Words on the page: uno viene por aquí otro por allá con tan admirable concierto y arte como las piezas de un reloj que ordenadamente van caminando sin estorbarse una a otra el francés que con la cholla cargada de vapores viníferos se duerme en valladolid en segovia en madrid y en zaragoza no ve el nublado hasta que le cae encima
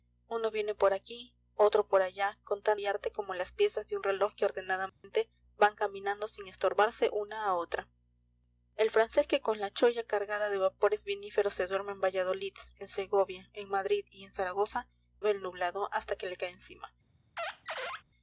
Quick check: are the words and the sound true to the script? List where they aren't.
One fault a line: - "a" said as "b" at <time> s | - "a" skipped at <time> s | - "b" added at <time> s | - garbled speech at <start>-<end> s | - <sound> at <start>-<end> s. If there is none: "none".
- "admirable concierto" skipped at 2.8 s
- dropout at 4.9-5.0 s
- "no" skipped at 14.9 s
- squeak at 17.4-18.0 s